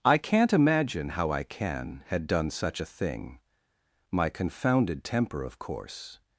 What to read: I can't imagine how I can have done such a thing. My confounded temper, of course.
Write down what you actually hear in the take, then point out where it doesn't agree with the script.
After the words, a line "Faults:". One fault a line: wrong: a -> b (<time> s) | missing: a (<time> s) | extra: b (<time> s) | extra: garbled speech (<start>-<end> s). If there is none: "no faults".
I can't imagine how I can had done such a thing. My confounded temper, of course.
Faults:
wrong: have -> had (2.1 s)